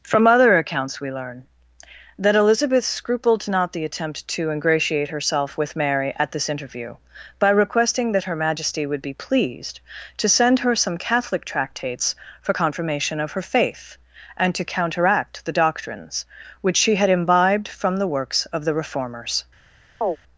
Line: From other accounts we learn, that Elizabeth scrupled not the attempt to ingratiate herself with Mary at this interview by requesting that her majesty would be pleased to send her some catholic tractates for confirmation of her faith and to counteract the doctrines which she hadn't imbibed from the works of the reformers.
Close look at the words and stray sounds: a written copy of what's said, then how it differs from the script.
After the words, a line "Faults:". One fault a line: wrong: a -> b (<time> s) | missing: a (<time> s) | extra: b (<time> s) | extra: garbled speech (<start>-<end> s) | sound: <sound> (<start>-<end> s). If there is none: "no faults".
From other accounts we learn, that Elizabeth scrupled not the attempt to ingratiate herself with Mary at this interview by requesting that her majesty would be pleased to send her some catholic tractates for confirmation of her faith and to counteract the doctrines which she had imbibed from the works of the reformers.
Faults:
wrong: hadn't -> had (16.9 s)
sound: chirp (20.0-20.2 s)